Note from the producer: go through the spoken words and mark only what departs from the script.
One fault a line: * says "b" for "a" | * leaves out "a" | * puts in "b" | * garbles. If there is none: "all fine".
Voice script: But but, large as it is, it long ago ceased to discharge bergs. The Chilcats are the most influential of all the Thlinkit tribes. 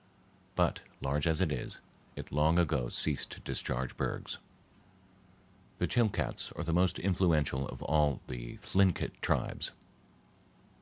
* leaves out "but"